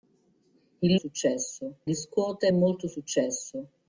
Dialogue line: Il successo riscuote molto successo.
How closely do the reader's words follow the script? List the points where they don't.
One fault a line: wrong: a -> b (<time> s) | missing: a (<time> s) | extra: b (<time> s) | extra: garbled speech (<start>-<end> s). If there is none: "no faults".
no faults